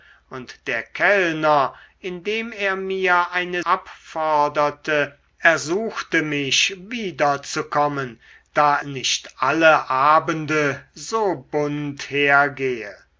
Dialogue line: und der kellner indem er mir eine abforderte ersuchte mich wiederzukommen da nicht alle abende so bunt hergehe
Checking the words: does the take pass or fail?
pass